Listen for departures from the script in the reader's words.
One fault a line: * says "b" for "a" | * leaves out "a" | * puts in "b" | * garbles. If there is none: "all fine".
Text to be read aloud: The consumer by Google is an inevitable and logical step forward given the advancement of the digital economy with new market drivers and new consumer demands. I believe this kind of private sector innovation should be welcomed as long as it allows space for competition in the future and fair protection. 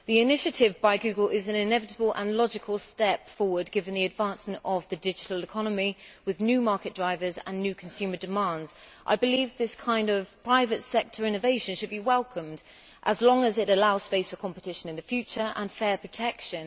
* says "initiative" for "consumer"